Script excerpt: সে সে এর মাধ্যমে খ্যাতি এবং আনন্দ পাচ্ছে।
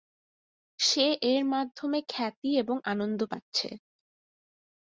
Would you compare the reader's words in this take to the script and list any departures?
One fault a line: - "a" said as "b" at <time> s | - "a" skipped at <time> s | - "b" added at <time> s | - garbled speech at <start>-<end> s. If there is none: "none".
- "সে" skipped at 1.1 s